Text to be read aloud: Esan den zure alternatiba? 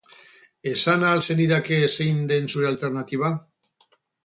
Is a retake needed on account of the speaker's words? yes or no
yes